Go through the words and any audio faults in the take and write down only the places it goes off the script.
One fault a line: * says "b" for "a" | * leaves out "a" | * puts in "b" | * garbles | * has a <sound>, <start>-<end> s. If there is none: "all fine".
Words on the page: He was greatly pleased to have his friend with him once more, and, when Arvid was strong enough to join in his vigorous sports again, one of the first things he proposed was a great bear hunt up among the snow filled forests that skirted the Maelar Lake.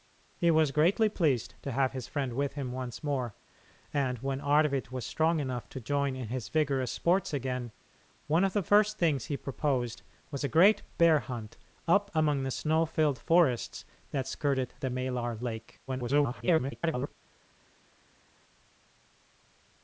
* garbles